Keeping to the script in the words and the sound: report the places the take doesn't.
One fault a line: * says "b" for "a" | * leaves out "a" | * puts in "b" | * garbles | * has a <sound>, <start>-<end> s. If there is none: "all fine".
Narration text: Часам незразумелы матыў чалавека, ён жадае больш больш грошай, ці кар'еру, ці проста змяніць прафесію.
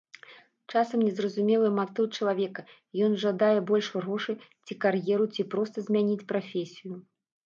* leaves out "больш"